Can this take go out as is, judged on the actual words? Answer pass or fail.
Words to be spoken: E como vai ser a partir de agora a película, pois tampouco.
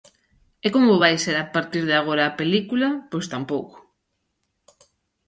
pass